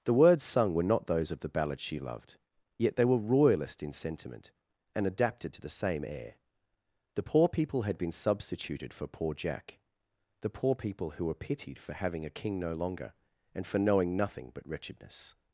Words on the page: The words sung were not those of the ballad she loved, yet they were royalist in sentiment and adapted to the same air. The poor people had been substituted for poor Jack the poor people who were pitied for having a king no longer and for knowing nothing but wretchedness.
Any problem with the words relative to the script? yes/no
no